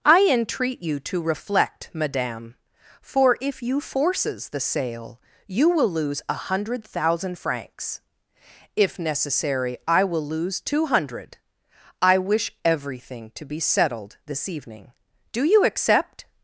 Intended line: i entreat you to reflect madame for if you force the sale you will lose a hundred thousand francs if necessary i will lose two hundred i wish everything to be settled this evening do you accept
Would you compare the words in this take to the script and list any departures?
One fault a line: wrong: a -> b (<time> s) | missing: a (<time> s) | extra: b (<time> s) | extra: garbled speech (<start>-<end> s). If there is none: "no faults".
wrong: force -> forces (3.8 s)